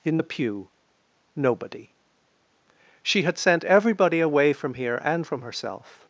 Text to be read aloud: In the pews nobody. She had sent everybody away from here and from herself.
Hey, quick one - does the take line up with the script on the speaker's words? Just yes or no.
no